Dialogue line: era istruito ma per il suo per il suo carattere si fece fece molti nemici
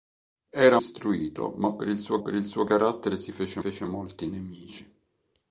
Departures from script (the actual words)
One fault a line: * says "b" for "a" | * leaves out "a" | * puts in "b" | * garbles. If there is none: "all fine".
all fine